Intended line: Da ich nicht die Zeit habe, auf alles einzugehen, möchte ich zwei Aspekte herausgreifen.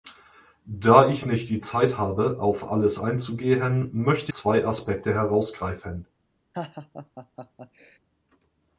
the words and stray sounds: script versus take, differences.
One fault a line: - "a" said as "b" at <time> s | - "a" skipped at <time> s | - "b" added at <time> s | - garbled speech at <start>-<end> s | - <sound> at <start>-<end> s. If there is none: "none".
- "ich" skipped at 4.3 s
- laugh at 6.5-8.0 s